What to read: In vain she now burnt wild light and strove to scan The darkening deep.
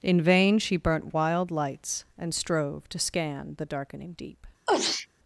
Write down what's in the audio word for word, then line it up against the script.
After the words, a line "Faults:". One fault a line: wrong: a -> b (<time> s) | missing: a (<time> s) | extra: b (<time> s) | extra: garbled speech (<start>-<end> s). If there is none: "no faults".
In vain she burnt wild lights and strove to scan The darkening deep.
Faults:
missing: now (0.8 s)
wrong: light -> lights (1.5 s)